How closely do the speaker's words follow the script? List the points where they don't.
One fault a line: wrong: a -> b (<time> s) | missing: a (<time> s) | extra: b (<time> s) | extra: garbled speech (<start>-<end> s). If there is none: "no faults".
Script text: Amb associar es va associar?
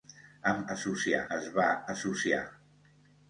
no faults